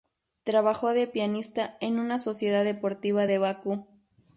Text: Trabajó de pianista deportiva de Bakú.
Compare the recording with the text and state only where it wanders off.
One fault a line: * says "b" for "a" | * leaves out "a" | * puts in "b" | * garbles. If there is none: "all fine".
* puts in "en una sociedad"